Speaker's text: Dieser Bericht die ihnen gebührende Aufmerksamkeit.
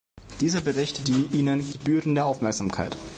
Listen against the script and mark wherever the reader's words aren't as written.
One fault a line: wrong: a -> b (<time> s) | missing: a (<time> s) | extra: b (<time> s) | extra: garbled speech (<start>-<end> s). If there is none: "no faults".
no faults